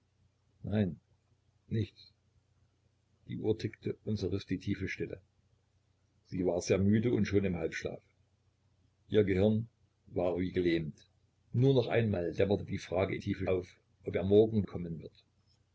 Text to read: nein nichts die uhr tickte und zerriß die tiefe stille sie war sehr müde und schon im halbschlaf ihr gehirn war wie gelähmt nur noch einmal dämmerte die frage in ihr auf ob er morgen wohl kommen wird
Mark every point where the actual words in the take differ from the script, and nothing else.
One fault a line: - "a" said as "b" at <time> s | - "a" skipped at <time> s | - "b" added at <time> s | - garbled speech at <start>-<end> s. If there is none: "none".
- "ihr" said as "tiefe" at 13.2 s
- "wohl" skipped at 14.6 s